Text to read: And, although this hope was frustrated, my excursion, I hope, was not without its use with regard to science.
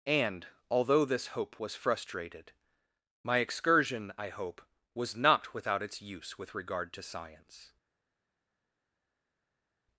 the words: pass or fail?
pass